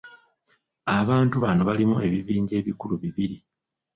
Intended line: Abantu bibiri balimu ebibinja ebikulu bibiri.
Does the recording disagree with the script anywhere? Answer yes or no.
yes